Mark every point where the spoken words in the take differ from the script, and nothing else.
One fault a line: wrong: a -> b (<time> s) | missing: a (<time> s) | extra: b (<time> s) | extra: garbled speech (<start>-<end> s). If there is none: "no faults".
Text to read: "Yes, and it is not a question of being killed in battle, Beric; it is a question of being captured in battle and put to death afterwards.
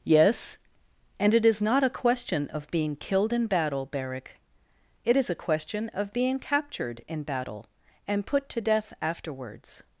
no faults